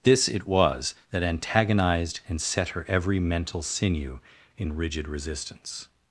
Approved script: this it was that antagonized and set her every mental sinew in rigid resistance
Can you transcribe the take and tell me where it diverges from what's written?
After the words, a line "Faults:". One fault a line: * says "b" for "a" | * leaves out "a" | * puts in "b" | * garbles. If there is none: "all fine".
this it was that antagonized and set her every mental sinew in rigid resistance
Faults:
all fine